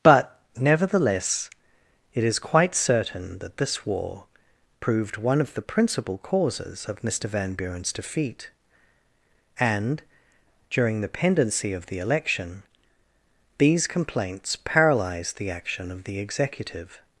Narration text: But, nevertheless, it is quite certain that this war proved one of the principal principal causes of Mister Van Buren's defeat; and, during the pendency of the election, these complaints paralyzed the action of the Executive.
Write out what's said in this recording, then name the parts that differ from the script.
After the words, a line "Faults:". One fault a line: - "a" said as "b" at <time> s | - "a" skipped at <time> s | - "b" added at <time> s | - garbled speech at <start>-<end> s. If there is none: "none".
But, nevertheless, it is quite certain that this war proved one of the principal causes of Mister Van Buren's defeat; and, during the pendency of the election, these complaints paralyzed the action of the Executive.
Faults:
- "principal" skipped at 6.2 s